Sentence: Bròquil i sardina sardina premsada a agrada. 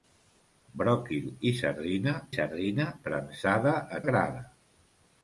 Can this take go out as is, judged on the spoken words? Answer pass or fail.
pass